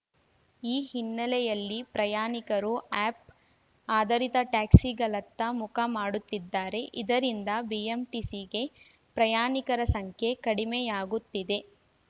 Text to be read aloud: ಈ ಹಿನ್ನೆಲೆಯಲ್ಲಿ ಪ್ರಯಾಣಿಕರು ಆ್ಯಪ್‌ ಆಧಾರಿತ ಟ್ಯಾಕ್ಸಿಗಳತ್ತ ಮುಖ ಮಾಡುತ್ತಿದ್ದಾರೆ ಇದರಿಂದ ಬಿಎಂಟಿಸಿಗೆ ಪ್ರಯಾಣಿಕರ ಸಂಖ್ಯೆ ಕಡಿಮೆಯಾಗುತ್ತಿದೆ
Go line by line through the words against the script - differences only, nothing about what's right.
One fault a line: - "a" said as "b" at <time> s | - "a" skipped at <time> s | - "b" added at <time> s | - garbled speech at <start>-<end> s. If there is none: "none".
none